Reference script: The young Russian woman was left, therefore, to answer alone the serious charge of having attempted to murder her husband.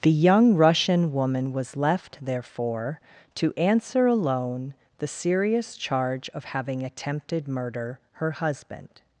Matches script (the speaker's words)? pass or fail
fail